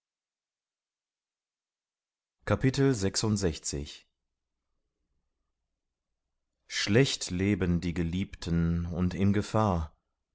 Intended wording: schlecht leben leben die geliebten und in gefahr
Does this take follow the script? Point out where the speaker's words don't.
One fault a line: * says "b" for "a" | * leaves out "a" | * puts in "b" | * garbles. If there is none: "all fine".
* leaves out "leben"